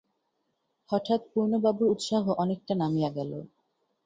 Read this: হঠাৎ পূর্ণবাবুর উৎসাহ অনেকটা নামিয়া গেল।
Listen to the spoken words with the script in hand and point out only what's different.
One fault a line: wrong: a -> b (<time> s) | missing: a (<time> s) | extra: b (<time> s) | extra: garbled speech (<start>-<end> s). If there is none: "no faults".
no faults